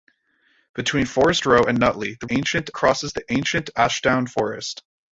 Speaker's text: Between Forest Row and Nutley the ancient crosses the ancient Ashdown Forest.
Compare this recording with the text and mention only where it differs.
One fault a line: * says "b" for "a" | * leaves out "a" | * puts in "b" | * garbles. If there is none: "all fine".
all fine